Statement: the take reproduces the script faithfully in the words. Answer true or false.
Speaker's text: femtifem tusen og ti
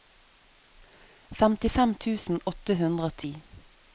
false